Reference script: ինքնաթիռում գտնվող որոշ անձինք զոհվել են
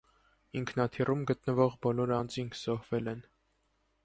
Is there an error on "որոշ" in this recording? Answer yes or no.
yes